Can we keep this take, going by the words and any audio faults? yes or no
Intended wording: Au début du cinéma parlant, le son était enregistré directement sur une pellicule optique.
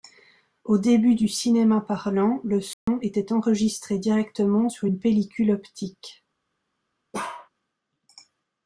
no